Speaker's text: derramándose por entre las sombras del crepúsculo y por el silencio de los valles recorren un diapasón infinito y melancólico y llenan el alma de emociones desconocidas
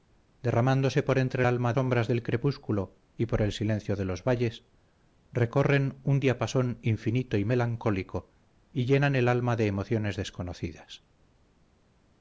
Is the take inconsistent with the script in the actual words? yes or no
yes